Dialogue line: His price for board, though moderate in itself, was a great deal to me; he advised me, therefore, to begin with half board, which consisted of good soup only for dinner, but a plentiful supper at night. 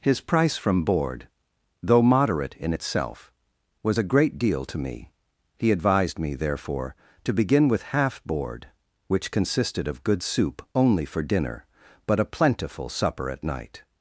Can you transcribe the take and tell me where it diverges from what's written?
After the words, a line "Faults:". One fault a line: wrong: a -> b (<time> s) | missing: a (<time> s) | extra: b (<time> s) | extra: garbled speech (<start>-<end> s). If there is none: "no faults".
His price from board, though moderate in itself, was a great deal to me; he advised me, therefore, to begin with half board, which consisted of good soup only for dinner, but a plentiful supper at night.
Faults:
wrong: for -> from (0.6 s)